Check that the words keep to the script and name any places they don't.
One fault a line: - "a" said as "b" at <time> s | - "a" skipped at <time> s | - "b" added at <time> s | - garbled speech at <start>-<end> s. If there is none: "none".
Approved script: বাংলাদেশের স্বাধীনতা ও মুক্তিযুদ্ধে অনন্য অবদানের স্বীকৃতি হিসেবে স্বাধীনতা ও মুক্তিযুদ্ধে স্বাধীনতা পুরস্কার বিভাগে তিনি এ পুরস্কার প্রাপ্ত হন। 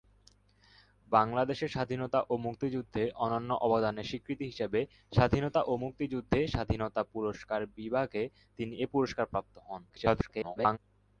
- garbled speech at 9.9-10.8 s